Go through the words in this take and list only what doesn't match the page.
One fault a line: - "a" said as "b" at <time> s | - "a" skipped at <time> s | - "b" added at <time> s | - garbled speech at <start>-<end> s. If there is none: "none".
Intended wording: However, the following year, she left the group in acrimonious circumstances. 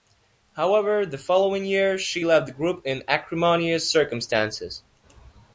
none